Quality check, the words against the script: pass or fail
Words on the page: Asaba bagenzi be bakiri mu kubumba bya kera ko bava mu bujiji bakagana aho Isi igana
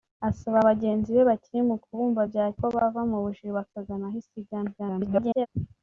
fail